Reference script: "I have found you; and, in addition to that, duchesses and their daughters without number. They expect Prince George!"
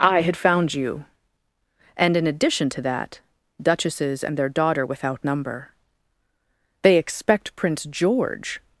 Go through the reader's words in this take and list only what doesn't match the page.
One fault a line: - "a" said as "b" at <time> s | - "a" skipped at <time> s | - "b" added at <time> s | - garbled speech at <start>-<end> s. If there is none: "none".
- "have" said as "had" at 0.2 s
- "daughters" said as "daughter" at 4.5 s